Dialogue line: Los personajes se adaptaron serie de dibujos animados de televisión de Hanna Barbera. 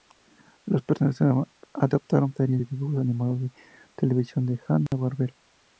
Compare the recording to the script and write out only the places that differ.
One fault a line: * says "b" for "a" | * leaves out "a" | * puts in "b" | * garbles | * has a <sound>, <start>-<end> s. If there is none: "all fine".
* has a dropout, 4.9-4.9 s